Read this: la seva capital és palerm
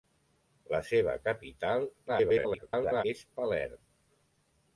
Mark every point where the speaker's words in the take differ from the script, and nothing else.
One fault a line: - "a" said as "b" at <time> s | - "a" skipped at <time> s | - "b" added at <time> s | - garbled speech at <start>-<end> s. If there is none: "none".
- garbled speech at 2.1-3.0 s